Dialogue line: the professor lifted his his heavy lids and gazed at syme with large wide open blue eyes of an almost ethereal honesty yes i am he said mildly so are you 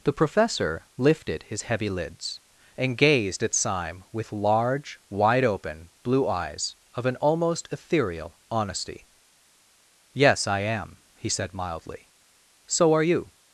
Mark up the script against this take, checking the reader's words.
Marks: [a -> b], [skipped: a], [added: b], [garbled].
the professor lifted his [skipped: his] heavy lids and gazed at syme with large wide open blue eyes of an almost ethereal honesty yes i am he said mildly so are you